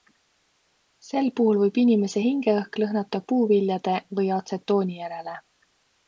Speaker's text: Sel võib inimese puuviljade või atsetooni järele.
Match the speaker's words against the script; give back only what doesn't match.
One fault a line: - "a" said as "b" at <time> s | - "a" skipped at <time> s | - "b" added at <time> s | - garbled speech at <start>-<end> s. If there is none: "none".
- "puhul" added at 1.4 s
- "hingeõhk lõhnata" added at 2.2 s